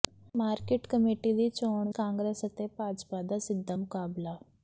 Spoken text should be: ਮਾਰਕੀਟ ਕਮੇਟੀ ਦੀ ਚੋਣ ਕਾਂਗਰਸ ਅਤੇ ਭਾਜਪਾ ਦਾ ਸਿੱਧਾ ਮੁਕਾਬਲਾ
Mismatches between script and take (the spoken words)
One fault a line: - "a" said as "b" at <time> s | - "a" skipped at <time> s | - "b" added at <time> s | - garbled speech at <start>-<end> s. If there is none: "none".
none